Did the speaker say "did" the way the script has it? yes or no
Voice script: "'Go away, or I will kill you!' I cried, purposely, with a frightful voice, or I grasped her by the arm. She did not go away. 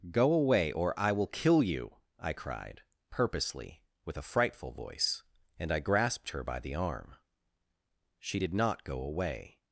yes